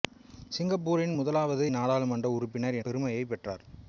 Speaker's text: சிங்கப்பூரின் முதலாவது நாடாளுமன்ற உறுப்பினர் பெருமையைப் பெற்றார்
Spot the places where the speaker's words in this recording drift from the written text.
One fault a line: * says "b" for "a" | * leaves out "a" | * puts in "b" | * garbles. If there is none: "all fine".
all fine